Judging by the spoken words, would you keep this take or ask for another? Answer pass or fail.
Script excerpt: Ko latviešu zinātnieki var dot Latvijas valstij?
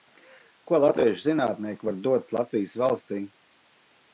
pass